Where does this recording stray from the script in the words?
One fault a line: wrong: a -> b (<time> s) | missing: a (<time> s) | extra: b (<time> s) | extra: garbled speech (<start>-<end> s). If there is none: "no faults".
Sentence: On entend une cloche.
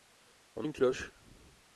missing: entend (0.7 s)